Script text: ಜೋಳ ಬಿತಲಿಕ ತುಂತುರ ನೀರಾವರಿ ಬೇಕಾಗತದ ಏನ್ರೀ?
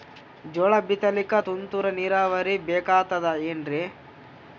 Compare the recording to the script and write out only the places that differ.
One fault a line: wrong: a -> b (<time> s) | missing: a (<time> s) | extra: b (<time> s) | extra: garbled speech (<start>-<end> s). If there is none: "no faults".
no faults